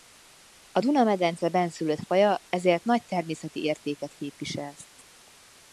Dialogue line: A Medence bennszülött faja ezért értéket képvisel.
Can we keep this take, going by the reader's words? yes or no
no